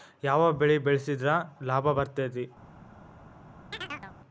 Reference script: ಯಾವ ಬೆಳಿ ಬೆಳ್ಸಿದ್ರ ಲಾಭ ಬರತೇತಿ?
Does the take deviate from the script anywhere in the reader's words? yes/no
no